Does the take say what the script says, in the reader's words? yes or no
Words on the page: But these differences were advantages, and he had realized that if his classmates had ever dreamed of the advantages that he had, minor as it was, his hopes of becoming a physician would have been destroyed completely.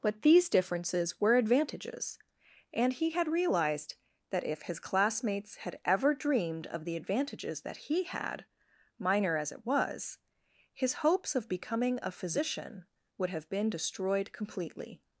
yes